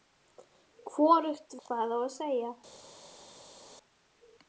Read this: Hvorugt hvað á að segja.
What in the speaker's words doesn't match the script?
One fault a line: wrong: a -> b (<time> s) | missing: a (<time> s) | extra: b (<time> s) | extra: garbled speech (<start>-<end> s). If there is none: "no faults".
no faults